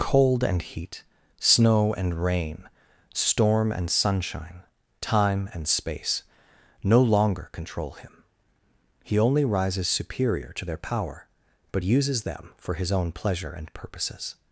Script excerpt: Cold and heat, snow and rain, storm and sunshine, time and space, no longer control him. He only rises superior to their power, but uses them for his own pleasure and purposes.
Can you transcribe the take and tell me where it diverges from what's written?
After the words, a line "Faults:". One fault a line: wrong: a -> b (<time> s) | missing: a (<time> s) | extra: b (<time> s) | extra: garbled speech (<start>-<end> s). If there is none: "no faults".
Cold and heat, snow and rain, storm and sunshine, time and space, no longer control him. He only rises superior to their power, but uses them for his own pleasure and purposes.
Faults:
no faults